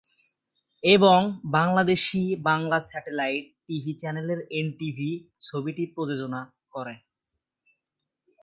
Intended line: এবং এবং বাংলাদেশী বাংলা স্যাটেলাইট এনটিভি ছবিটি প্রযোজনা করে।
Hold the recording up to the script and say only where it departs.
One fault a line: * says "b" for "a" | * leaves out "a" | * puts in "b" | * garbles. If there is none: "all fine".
* leaves out "এবং"
* puts in "টিভি চ্যানেল"